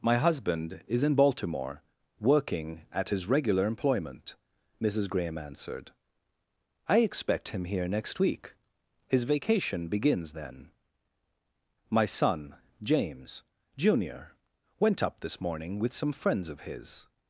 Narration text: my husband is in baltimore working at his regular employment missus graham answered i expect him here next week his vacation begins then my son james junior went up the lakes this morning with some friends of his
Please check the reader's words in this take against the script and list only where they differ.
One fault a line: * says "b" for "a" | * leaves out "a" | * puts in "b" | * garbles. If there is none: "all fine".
* leaves out "the lakes"